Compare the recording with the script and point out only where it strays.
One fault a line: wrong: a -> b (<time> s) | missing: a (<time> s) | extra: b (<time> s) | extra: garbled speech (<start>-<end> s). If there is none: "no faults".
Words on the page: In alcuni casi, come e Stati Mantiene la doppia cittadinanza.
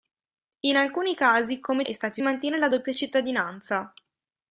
no faults